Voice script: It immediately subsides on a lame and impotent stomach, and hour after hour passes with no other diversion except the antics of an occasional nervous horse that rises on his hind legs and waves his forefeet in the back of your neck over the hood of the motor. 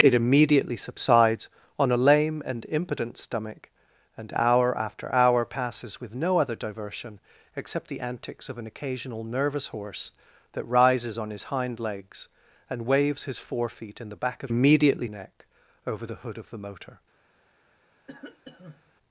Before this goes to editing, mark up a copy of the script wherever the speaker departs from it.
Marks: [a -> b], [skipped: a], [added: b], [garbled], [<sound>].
It immediately subsides on a lame and impotent stomach, and hour after hour passes with no other diversion except the antics of an occasional nervous horse that rises on his hind legs and waves his forefeet in the back of [your -> immediately] neck over the hood of the motor. [cough]